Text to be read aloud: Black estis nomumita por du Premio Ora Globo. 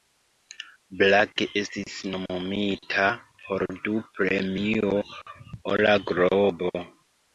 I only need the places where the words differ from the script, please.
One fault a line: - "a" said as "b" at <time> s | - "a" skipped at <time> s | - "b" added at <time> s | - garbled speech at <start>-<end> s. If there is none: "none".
none